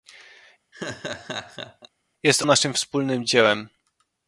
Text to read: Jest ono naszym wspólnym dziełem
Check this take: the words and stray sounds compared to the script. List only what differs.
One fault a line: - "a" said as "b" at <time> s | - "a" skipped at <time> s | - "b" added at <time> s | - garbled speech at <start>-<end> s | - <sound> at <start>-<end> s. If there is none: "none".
- laugh at 0.7-1.9 s
- "ono" skipped at 2.4 s